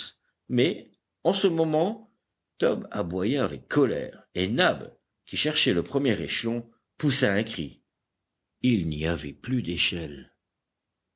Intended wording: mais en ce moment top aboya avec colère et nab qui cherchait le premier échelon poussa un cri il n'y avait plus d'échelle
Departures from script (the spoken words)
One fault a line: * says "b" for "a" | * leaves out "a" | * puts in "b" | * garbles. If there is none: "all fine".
all fine